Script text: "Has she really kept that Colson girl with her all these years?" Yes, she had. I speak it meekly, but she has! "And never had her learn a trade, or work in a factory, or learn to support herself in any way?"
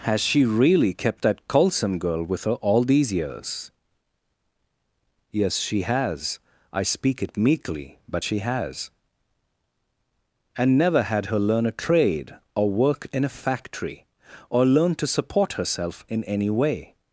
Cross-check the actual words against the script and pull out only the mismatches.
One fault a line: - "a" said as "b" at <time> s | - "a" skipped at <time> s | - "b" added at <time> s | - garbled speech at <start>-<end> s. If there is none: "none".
- "had" said as "has" at 5.8 s